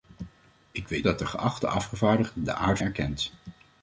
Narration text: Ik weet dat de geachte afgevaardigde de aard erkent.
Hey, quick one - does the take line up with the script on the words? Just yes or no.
yes